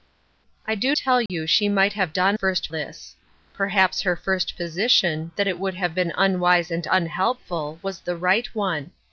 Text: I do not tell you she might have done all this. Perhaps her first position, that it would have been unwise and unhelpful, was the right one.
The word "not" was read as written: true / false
false